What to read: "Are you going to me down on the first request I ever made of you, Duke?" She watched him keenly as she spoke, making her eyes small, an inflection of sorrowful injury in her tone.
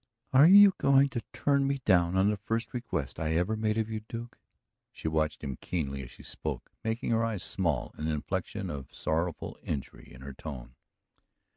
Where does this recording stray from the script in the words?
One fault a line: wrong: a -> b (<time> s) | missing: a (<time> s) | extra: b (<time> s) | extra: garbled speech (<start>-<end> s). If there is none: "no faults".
extra: turn (1.3 s)